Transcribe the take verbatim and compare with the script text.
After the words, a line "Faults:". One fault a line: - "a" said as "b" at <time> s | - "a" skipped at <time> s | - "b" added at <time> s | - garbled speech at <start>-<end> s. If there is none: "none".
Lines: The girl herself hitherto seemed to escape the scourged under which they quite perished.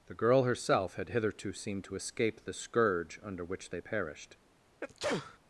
The girl herself had hitherto seemed to escape the scourge under which they perished.
Faults:
- "had" added at 0.9 s
- "scourged" said as "scourge" at 2.5 s
- "quite" skipped at 3.8 s